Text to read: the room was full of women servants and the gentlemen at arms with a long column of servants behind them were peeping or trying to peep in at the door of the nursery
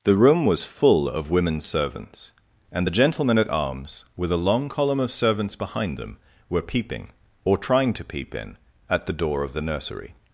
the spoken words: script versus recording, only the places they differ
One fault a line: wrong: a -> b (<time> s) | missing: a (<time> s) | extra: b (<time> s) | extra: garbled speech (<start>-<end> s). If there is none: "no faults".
no faults